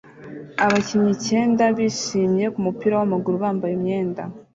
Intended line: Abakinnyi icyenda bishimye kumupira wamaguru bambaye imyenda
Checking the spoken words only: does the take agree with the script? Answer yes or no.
yes